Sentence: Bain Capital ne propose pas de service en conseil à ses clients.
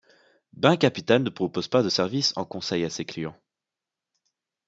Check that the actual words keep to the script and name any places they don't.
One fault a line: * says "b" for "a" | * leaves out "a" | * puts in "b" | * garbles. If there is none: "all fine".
all fine